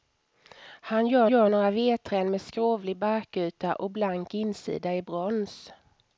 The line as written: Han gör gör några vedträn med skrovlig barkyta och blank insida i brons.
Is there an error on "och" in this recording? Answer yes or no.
no